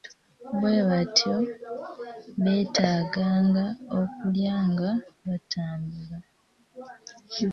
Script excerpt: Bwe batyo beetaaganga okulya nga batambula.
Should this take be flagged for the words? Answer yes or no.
no